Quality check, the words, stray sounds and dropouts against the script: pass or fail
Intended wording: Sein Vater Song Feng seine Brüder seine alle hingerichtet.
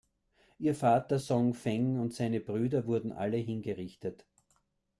fail